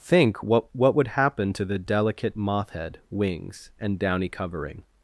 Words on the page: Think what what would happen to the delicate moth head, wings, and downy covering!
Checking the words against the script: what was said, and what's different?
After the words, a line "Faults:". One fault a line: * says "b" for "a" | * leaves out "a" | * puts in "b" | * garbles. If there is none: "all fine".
Think what what would happen to the delicate moth head, wings, and downy covering!
Faults:
all fine